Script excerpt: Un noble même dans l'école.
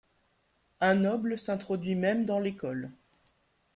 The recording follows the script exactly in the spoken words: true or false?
false